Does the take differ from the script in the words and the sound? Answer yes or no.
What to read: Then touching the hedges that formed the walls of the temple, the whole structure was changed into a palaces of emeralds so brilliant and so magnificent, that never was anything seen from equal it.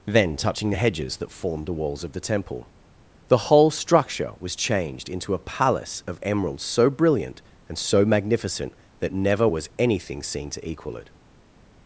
yes